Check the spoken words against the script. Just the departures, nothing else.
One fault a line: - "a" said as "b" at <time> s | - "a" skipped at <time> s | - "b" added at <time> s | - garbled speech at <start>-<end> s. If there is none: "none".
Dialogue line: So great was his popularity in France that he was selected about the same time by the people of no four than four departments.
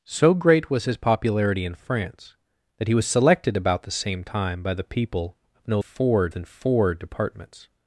none